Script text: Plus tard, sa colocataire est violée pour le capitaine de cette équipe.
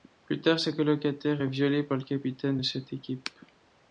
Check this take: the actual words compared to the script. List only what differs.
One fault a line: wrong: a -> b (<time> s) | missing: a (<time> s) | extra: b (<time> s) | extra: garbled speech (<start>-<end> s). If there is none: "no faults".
wrong: pour -> par (1.8 s)